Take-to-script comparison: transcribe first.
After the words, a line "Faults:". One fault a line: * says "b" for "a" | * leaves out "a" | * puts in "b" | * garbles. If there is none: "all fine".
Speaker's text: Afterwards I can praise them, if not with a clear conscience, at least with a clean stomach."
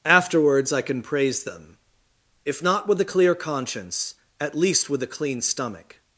Afterwards I can praise them, if not with a clear conscience, at least with a clean stomach."
Faults:
all fine